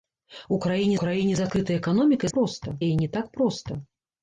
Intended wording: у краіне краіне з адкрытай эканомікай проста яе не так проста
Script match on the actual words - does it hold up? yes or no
yes